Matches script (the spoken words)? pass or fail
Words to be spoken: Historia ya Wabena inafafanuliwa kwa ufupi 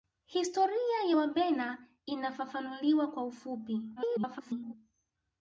fail